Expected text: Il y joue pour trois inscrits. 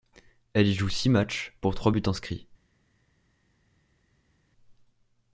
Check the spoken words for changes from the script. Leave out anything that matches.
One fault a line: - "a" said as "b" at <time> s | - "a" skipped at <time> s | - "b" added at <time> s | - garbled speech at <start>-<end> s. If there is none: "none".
- "Il" said as "Elle" at 0.5 s
- "six matchs" added at 0.9 s
- "buts" added at 1.9 s